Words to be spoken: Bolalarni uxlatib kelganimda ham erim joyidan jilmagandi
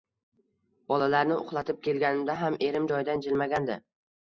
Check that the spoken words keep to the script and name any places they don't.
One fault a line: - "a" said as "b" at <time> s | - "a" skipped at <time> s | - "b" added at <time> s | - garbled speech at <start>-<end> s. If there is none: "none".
none